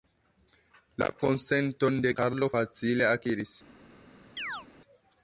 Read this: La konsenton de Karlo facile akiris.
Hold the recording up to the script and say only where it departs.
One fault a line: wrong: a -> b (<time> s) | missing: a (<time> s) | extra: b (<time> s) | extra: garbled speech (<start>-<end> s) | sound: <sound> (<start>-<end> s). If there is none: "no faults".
sound: chirp (4.4-4.7 s)